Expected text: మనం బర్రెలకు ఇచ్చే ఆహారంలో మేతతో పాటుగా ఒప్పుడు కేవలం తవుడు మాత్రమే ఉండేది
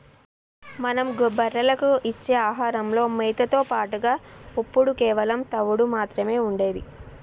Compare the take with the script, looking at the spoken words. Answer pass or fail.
pass